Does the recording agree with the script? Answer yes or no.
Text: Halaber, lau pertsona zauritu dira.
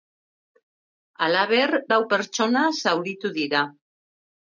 yes